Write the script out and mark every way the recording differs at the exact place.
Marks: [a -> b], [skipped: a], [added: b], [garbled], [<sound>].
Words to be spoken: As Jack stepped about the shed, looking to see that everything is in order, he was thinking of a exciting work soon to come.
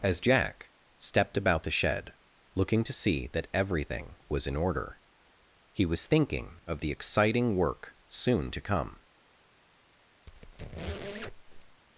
As Jack stepped about the shed, looking to see that everything [is -> was] in order, he was thinking of [a -> the] exciting work soon to come. [squeak]